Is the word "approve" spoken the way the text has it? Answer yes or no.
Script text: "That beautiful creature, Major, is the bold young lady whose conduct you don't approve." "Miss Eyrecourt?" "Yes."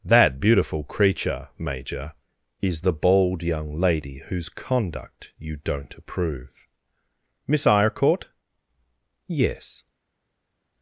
yes